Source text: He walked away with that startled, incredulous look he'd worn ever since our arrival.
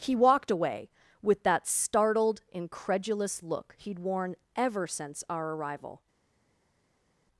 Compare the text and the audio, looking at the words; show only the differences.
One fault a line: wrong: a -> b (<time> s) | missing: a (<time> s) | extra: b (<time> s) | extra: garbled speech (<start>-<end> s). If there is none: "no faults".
no faults